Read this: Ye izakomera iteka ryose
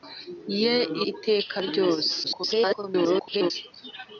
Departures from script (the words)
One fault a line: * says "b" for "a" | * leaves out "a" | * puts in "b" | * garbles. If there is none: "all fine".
* leaves out "izakomera"
* garbles